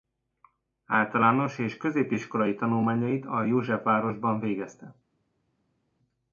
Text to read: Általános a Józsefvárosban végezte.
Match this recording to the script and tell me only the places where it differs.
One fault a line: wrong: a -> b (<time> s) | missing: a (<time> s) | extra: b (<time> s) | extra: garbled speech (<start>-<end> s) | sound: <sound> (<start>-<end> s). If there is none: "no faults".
extra: és középiskolai tanulmányait (1.6 s)